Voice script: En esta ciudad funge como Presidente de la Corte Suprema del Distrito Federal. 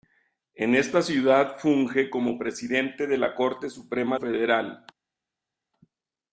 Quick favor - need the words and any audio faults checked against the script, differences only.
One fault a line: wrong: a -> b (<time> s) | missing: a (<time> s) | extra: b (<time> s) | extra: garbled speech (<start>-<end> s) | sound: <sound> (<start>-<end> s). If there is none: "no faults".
missing: del Distrito (4.2 s)